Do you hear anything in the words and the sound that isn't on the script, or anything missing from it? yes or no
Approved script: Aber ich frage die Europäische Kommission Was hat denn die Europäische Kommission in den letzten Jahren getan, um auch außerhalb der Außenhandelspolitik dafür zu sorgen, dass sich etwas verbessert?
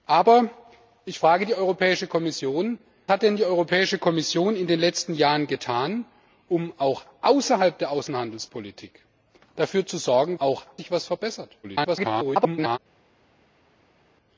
yes